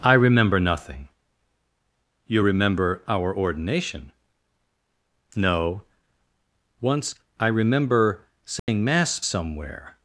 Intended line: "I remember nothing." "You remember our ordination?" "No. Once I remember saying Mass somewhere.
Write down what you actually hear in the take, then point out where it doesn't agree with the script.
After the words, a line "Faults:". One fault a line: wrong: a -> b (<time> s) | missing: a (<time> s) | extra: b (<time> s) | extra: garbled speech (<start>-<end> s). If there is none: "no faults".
"I remember nothing." "You remember our ordination?" "No. Once I remember saying Mass somewhere.
Faults:
no faults